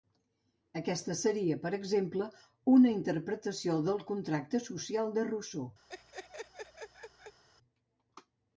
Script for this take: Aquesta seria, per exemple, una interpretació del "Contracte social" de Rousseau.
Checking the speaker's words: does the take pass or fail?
pass